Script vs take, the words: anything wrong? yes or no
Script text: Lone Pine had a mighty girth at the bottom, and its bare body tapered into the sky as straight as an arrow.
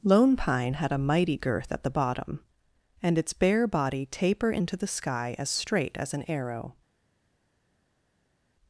yes